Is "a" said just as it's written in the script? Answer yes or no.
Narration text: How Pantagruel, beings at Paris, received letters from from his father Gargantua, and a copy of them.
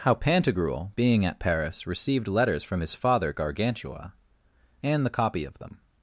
no